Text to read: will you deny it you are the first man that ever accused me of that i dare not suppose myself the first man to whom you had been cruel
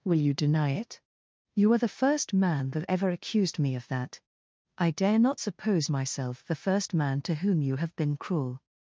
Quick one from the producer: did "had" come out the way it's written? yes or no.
no